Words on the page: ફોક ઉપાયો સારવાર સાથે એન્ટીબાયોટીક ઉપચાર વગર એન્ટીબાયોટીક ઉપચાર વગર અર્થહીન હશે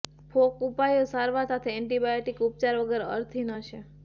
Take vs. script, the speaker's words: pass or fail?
fail